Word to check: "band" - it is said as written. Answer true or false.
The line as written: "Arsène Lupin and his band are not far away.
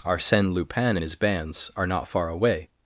false